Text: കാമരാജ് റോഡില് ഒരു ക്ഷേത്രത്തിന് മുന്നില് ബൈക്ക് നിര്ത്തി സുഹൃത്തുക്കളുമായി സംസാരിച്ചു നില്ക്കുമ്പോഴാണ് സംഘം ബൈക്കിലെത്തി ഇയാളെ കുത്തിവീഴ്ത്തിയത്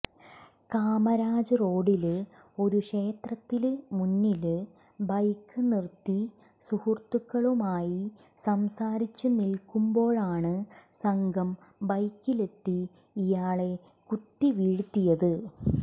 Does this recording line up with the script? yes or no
yes